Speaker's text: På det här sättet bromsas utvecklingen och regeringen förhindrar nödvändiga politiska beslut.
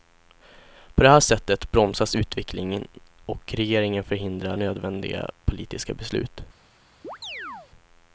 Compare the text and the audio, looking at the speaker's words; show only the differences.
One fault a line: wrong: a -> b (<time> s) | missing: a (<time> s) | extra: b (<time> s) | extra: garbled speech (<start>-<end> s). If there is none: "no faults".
no faults